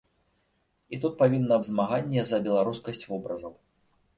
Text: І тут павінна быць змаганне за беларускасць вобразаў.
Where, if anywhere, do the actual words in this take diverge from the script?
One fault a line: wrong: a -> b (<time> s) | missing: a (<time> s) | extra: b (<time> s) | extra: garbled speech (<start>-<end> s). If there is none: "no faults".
missing: быць (1.6 s)